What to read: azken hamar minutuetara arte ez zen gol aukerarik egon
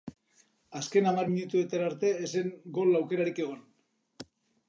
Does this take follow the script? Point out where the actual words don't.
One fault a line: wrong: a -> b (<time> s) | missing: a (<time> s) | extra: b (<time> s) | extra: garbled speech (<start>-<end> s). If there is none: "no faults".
no faults